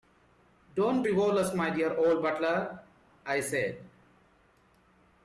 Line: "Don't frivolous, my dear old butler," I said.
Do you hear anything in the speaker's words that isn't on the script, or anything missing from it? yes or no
no